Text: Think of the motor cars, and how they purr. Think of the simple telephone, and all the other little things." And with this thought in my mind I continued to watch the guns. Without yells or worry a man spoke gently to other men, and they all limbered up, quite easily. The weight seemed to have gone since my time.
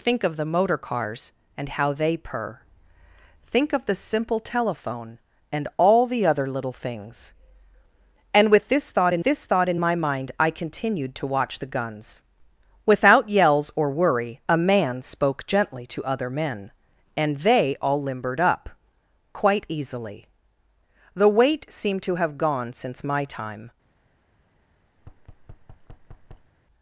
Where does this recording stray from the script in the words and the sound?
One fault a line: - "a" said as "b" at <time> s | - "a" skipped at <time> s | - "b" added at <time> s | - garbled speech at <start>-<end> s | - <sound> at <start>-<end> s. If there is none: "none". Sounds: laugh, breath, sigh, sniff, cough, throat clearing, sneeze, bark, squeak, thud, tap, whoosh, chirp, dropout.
- "this thought in" added at 9.2 s
- thud at 25.0-26.5 s